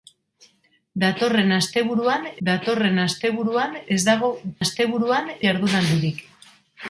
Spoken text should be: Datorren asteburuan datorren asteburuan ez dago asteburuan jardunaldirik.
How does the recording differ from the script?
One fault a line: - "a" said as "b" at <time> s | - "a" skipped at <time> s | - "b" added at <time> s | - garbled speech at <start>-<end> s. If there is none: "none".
none